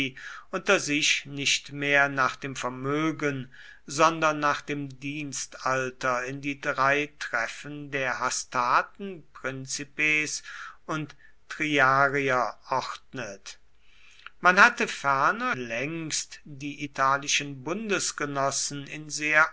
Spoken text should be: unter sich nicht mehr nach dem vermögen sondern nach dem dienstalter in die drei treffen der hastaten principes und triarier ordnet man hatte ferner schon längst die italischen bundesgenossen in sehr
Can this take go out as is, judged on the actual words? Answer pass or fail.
fail